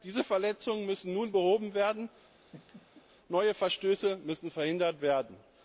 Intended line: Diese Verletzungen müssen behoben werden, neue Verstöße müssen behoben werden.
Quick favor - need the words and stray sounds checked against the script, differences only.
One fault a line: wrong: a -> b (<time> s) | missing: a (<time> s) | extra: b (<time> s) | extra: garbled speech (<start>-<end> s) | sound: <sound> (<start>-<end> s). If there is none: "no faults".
extra: nun (1.1 s)
sound: laugh (2.4-3.0 s)
wrong: behoben -> verhindert (4.5 s)